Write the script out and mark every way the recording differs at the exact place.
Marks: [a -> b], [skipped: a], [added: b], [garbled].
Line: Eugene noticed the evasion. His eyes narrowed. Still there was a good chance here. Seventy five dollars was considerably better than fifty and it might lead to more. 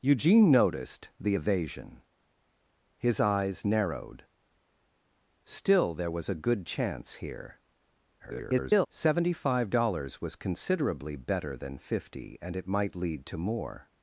Eugene noticed the evasion. His eyes narrowed. Still there was a good chance here. [garbled] Seventy five dollars was considerably better than fifty and it might lead to more.